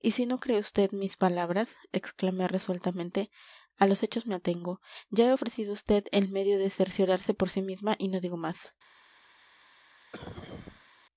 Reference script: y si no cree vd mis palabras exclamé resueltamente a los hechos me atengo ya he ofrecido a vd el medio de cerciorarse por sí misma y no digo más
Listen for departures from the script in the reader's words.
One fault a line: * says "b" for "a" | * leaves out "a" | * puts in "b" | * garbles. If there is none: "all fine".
all fine